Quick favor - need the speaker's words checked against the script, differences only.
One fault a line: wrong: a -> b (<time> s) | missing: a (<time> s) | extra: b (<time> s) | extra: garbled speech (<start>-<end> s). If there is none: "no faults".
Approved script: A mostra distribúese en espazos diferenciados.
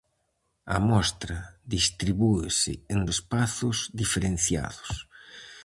no faults